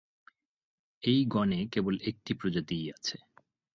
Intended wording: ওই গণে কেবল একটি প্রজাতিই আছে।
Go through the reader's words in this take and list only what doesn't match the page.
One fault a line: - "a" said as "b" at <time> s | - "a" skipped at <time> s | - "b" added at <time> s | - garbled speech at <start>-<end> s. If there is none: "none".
- "ওই" said as "এই" at 1.0 s